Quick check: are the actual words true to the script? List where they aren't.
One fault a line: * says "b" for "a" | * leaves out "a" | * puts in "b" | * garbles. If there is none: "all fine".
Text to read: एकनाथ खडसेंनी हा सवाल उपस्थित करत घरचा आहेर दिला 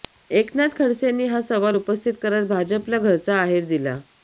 * puts in "भाजपला"